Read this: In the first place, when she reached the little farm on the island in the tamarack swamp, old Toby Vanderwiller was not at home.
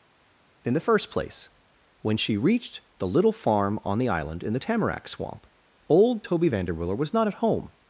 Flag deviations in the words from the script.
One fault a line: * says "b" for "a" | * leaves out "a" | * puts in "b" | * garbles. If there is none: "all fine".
all fine